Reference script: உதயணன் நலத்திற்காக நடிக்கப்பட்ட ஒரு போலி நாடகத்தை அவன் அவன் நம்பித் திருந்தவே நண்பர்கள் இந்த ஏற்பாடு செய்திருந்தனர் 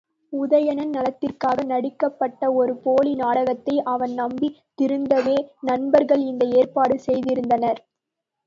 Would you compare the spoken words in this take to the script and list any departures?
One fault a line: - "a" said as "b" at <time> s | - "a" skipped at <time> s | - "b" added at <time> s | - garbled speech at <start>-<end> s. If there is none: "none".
- "அவன்" skipped at 4.1 s